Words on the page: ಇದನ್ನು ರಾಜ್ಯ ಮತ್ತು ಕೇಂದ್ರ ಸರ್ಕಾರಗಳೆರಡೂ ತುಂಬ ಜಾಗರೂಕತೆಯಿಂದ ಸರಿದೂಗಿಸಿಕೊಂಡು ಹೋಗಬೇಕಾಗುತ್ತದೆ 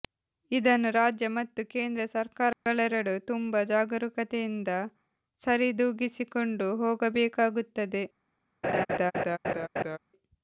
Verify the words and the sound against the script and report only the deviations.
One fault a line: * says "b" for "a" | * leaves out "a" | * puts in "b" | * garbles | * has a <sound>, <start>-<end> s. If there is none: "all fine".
* has a dropout, 2.5-2.7 s
* has a laugh, 8.6-10.0 s